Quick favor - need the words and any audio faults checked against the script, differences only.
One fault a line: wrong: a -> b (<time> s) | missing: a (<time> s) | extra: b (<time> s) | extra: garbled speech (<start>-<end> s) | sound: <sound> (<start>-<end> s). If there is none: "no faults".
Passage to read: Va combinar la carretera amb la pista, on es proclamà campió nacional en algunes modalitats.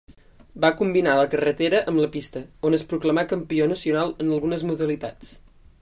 no faults